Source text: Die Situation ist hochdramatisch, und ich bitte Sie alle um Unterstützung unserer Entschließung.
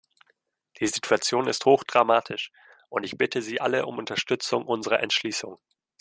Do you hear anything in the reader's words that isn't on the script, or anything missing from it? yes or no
no